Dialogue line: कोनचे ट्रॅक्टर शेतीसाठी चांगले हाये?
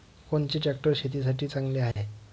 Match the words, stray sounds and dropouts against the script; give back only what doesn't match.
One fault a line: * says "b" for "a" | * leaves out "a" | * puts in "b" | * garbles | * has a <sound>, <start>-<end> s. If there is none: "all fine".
* has a dropout, 1.9-2.0 s